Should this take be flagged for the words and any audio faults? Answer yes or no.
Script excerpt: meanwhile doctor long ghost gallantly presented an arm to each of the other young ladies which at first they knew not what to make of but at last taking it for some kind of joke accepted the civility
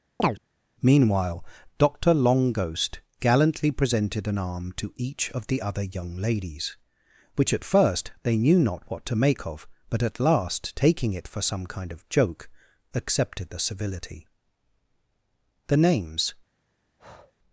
yes